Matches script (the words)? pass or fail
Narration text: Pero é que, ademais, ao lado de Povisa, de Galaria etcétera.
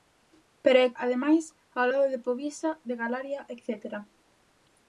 fail